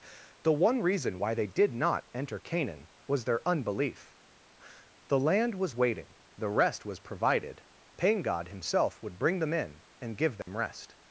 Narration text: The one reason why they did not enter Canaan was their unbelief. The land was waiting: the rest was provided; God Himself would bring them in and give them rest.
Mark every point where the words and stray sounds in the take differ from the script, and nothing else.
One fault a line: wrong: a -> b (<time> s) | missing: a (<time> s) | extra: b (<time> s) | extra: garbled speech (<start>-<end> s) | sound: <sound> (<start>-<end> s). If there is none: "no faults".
extra: pain (8.0 s)
sound: dropout (10.4-10.5 s)